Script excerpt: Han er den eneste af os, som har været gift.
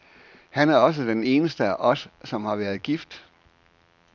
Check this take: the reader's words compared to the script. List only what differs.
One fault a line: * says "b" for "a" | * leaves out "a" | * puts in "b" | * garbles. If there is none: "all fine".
* puts in "også"